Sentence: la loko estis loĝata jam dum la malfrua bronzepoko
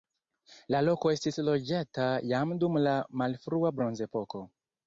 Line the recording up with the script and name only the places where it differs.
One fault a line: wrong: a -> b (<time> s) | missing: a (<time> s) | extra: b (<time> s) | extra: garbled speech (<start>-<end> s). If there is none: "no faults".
no faults